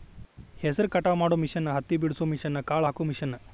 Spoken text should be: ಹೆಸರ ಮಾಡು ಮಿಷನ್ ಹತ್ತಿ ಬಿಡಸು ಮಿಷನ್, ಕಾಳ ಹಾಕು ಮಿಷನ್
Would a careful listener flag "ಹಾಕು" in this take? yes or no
no